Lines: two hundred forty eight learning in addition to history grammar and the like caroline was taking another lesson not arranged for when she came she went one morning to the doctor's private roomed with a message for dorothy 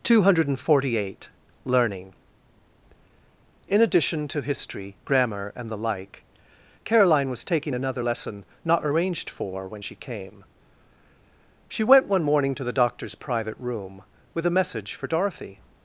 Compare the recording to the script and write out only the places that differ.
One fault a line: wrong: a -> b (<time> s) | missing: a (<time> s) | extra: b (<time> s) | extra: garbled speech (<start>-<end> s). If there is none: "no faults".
wrong: roomed -> room (13.6 s)